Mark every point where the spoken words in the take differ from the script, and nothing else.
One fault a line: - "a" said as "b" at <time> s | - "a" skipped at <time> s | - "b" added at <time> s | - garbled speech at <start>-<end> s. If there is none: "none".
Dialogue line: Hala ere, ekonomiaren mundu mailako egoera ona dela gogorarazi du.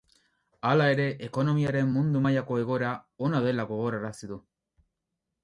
none